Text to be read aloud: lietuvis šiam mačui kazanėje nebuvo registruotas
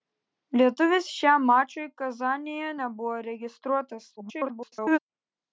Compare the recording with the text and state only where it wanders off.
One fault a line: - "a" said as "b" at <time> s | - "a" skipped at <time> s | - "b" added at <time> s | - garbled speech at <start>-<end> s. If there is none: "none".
- garbled speech at 4.2-5.0 s